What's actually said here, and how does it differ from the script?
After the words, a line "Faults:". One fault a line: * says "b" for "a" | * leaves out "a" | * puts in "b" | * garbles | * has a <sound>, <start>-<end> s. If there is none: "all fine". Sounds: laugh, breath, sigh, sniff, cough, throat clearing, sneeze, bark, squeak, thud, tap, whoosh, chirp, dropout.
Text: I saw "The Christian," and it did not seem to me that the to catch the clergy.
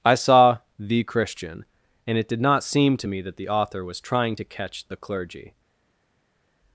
I saw "The Christian," and it did not seem to me that the author was trying to catch the clergy.
Faults:
* puts in "author was trying"